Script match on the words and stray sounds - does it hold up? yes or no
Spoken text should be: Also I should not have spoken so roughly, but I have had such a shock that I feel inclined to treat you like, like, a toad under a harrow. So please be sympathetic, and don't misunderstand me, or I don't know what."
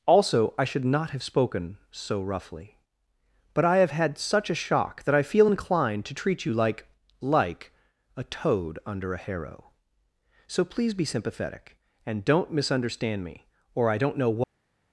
yes